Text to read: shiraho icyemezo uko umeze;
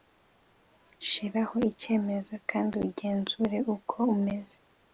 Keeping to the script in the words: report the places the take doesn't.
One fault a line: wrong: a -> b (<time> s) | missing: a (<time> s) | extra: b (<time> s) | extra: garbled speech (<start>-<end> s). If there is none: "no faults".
extra: kandi ugenzure (2.5 s)